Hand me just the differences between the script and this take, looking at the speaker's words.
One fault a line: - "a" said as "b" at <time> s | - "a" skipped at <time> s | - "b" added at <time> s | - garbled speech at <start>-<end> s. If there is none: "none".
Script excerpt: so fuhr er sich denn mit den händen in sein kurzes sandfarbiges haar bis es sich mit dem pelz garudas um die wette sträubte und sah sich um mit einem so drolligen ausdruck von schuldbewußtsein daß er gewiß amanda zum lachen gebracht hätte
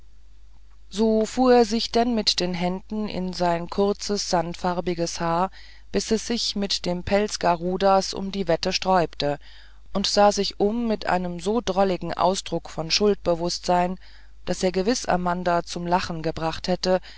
none